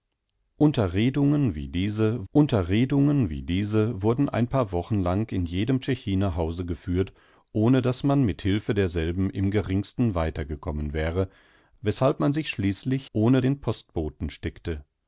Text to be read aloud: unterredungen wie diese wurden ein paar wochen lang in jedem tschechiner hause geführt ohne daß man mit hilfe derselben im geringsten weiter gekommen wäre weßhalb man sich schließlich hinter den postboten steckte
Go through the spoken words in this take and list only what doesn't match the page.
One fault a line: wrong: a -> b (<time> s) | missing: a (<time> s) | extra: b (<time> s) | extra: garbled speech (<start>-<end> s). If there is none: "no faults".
extra: unterredungen wie diese (2.3 s)
wrong: hinter -> ohne (13.1 s)